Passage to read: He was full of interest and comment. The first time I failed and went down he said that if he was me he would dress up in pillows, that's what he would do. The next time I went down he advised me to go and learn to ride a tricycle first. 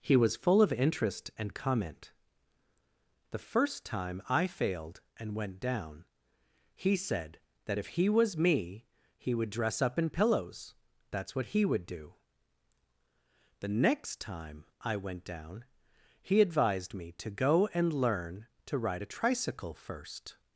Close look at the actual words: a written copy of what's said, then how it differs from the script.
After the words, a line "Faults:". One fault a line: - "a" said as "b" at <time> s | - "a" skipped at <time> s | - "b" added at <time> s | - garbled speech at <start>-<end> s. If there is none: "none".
He was full of interest and comment. The first time I failed and went down he said that if he was me he would dress up in pillows, that's what he would do. The next time I went down he advised me to go and learn to ride a tricycle first.
Faults:
none